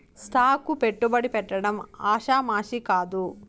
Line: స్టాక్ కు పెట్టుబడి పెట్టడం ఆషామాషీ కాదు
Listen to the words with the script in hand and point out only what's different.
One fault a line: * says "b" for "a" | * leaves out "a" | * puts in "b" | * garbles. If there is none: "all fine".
all fine